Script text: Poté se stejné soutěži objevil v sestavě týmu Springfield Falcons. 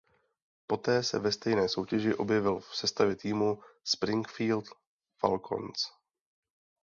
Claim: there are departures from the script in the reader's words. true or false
true